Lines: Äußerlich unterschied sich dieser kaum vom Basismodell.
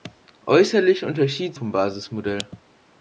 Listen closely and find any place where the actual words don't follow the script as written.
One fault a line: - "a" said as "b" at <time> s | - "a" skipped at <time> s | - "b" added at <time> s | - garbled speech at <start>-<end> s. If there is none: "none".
- "sich dieser kaum" skipped at 1.6 s